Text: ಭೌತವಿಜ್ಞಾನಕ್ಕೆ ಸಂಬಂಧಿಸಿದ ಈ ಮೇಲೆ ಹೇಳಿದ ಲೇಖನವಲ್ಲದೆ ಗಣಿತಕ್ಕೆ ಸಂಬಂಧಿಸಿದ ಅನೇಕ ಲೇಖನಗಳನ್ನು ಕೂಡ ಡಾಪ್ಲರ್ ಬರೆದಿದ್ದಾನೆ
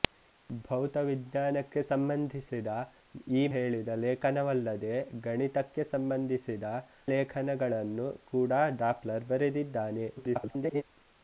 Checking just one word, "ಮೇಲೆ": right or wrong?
wrong